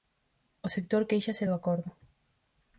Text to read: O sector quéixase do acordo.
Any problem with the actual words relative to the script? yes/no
no